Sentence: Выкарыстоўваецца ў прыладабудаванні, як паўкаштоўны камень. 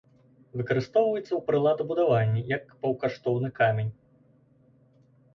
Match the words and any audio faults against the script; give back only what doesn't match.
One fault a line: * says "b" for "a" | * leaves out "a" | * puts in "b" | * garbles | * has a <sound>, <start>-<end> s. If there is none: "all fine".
all fine